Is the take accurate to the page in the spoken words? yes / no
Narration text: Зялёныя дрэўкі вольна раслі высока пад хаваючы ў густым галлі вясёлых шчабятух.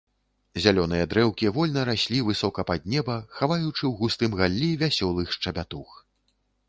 no